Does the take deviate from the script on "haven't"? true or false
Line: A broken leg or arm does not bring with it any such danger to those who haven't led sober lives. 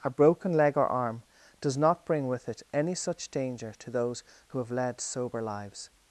true